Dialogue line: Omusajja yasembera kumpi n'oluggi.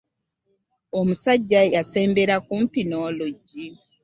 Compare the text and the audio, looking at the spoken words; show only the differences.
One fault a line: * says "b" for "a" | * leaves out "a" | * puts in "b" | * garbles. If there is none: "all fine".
all fine